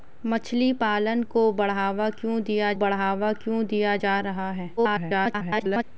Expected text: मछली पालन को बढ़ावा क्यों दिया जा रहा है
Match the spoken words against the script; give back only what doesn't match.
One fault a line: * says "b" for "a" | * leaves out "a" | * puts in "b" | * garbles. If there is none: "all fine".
* puts in "बढ़ावा क्यों दिया"
* garbles